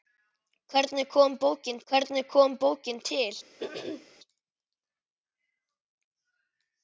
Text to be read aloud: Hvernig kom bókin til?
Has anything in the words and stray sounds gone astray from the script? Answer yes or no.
yes